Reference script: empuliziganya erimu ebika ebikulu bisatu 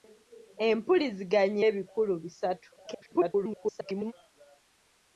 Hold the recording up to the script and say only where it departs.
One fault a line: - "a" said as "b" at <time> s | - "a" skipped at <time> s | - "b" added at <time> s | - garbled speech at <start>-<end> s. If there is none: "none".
- "erimu ebika" skipped at 1.6 s
- garbled speech at 2.8-4.1 s